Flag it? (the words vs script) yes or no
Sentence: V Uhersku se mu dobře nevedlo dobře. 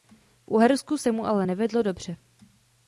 yes